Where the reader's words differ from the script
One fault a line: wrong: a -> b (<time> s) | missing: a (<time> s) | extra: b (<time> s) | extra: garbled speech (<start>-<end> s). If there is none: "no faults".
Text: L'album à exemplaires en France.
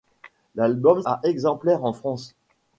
no faults